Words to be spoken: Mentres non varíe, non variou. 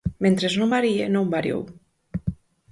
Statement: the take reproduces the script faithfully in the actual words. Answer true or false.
true